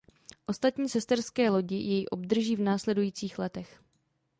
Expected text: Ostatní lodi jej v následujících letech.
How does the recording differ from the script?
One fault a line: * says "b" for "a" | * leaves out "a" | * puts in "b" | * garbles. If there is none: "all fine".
* puts in "sesterské"
* puts in "obdrží"